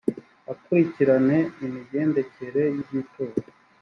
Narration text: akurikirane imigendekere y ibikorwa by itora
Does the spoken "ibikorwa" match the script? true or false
false